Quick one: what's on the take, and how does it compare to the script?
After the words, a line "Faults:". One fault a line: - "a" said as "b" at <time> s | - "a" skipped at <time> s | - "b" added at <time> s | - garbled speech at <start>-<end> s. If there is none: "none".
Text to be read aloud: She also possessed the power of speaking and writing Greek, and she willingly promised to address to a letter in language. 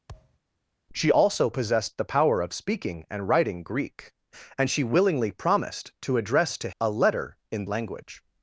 She also possessed the power of speaking and writing Greek, and she willingly promised to address to a letter in language.
Faults:
none